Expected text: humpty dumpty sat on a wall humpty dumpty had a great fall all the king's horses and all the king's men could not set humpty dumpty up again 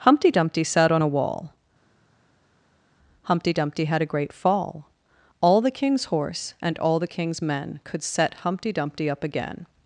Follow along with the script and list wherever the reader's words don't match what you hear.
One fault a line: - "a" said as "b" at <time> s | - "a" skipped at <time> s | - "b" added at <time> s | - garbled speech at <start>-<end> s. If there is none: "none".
- "horses" said as "horse" at 6.1 s
- "not" skipped at 8.0 s